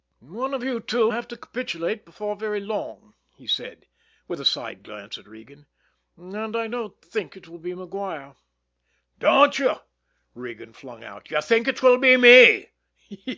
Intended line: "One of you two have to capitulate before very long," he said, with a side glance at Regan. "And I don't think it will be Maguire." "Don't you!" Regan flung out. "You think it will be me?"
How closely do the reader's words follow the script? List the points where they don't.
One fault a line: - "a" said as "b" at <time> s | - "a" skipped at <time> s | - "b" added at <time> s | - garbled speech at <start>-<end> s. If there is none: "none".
none